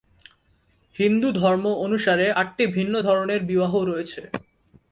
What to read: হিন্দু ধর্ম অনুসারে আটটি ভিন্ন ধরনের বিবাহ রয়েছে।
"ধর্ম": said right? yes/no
yes